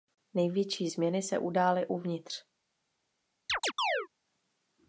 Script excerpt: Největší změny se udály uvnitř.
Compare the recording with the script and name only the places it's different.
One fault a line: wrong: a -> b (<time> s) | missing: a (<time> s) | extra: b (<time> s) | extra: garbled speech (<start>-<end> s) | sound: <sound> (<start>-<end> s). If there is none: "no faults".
sound: chirp (3.5-4.1 s)